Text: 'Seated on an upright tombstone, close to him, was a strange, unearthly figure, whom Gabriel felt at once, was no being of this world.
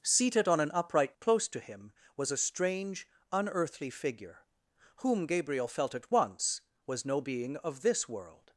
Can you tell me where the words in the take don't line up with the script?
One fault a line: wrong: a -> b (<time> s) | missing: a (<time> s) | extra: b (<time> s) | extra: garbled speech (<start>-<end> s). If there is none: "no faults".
missing: tombstone (1.1 s)